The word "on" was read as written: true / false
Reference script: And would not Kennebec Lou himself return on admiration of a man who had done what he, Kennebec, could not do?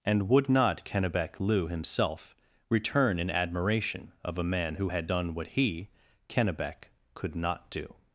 false